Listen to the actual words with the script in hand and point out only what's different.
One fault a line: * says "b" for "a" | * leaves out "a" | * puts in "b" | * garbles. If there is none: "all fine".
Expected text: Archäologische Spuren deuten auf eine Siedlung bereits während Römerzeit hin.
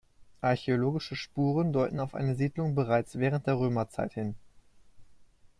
* puts in "der"